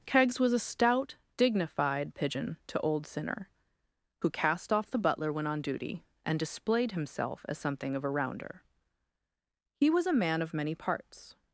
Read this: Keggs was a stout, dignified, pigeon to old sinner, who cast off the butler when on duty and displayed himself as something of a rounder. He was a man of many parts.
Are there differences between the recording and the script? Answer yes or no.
no